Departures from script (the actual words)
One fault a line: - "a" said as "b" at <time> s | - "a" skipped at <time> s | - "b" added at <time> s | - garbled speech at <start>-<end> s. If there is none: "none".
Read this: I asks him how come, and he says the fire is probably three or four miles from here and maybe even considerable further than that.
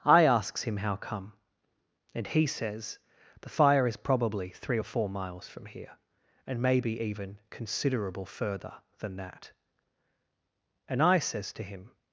- "And I says to him" added at 10.9 s